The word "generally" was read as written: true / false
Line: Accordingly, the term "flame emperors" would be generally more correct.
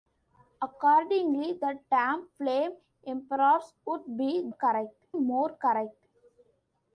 false